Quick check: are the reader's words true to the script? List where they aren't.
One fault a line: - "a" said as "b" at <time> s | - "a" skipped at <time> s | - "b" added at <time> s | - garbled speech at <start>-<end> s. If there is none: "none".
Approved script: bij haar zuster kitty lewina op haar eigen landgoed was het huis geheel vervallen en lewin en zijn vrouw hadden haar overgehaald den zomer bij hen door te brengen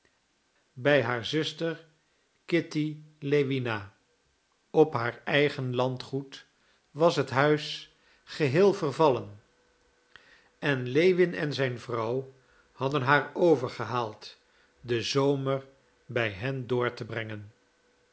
none